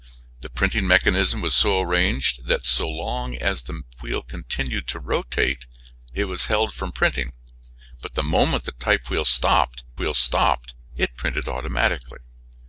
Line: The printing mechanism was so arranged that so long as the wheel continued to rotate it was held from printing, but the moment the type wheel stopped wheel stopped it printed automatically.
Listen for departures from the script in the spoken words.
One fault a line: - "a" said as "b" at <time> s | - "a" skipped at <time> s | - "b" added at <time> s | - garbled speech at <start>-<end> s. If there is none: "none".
none